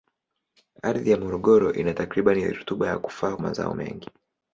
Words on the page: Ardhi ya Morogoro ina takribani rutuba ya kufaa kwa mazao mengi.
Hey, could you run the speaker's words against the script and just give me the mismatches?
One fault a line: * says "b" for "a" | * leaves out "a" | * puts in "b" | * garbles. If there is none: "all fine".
* leaves out "kwa"